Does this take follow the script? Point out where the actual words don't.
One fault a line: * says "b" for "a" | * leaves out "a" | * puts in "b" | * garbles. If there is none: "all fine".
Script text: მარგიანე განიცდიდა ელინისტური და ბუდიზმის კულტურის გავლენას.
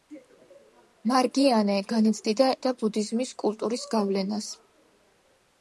* leaves out "ელინისტური"